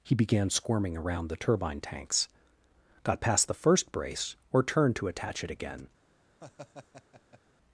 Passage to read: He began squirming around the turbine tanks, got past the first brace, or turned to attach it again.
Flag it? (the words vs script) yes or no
no